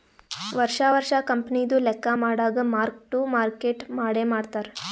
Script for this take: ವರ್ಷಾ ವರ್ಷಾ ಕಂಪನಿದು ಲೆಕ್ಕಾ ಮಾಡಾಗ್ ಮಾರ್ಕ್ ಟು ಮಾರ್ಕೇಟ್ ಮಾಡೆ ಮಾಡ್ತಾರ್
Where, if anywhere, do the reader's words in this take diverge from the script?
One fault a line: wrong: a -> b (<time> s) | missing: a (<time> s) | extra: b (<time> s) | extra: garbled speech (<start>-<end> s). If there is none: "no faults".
no faults